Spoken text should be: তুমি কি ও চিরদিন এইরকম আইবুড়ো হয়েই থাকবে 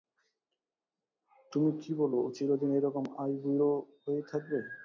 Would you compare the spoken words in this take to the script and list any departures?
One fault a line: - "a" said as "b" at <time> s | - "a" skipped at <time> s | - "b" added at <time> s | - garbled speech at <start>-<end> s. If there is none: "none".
- "বল" added at 2.0 s